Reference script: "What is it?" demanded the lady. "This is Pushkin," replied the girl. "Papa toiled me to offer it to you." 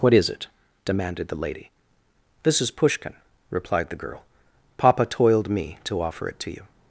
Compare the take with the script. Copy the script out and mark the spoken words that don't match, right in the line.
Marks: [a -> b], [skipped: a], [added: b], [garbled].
"What is it?" demanded the lady. "This is Pushkin," replied the girl. "Papa toiled me to offer it to you."